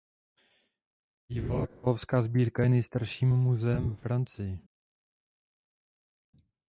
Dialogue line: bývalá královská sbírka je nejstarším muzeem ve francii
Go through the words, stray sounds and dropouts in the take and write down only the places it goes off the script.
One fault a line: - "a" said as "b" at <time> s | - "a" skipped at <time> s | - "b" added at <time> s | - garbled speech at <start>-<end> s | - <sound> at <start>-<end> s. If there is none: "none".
none